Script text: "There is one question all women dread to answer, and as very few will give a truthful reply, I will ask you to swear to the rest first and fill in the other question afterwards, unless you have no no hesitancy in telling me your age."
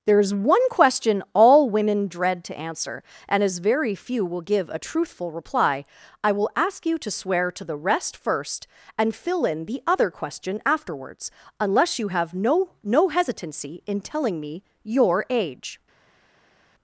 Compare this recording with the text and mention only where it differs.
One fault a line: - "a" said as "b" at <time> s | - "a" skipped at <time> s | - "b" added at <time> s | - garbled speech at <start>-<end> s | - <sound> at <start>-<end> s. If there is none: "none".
none